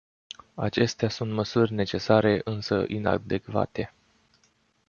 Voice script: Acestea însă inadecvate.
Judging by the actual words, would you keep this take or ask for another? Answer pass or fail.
fail